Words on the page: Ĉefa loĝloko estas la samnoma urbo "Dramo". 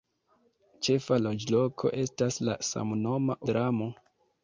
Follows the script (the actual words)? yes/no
no